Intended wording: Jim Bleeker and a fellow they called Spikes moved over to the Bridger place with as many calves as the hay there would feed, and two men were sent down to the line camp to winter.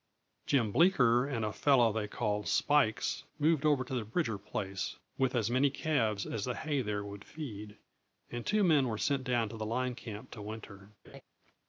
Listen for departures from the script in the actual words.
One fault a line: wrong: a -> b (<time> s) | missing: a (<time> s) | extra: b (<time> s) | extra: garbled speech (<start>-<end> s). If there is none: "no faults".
no faults